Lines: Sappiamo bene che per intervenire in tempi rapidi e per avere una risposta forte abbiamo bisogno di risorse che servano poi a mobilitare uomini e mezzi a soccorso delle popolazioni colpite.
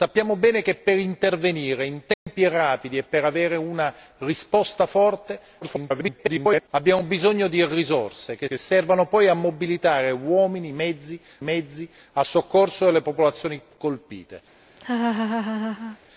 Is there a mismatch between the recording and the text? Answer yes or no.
yes